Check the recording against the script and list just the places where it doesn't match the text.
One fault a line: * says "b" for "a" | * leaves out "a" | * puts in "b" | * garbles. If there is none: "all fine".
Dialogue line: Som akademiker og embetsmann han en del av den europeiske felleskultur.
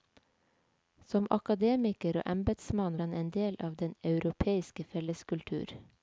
all fine